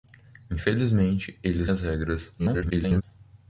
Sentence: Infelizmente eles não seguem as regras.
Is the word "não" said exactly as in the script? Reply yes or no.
no